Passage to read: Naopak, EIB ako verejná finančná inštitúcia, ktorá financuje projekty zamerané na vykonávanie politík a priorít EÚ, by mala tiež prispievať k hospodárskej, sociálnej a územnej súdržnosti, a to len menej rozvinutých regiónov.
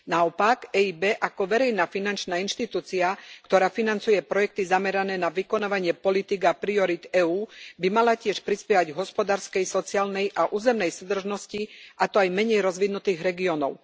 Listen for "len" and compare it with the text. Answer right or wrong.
wrong